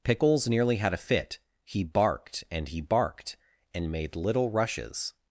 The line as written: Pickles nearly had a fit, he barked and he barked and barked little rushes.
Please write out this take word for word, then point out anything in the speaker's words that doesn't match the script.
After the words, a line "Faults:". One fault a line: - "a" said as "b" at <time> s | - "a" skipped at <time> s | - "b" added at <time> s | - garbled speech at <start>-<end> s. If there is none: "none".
Pickles nearly had a fit, he barked and he barked and made little rushes.
Faults:
- "barked" said as "made" at 3.9 s